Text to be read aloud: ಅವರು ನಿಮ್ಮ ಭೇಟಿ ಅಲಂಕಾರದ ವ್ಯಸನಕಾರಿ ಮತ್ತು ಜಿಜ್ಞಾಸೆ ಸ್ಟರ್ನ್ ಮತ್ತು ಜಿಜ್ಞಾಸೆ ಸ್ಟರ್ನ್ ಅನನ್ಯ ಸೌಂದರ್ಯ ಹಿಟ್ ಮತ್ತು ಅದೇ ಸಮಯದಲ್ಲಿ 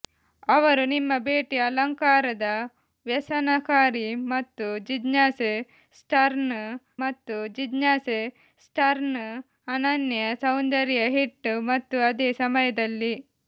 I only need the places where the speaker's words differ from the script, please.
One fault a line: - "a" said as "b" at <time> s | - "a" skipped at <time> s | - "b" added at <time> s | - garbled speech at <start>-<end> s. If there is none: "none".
none